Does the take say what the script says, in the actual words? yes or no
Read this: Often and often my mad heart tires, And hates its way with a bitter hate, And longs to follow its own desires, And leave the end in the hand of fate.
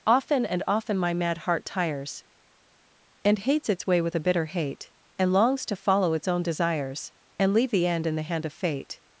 yes